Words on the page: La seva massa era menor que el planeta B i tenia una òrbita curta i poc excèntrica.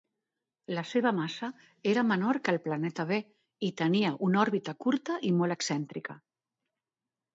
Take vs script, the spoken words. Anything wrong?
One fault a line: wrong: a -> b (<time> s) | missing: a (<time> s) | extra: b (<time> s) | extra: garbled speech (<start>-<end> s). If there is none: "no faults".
wrong: poc -> molt (5.4 s)